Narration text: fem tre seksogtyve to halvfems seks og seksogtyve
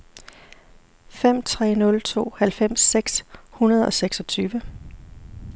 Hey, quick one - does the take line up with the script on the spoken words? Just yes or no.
no